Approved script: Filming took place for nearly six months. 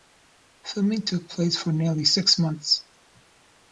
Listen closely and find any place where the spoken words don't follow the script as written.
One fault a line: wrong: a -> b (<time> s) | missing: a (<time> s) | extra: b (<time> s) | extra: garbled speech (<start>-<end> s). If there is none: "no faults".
no faults